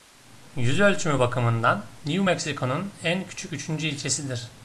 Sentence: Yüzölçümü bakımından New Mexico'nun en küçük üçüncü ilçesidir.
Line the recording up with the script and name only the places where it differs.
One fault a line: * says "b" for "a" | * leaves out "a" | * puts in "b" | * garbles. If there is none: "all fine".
all fine